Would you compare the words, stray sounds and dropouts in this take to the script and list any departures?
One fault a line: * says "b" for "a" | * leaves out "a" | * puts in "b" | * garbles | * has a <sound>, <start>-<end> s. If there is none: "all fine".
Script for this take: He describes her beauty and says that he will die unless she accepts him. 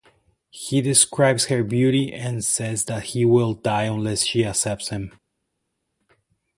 all fine